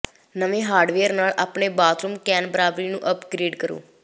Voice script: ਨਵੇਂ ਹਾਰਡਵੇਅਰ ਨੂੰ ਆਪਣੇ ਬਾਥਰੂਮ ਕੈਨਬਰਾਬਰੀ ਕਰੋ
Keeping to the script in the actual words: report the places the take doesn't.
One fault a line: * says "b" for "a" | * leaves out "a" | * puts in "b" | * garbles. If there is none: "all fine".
* says "ਨਾਲ" for "ਨੂੰ"
* puts in "ਨੂੰ ਅਪਗ੍ਰੇਡ"